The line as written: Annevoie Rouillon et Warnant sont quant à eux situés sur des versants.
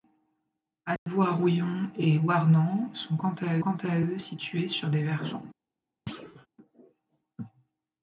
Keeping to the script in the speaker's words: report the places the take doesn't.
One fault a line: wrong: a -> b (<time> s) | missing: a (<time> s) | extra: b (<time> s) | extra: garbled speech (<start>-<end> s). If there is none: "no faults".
extra: quant à (3.6 s)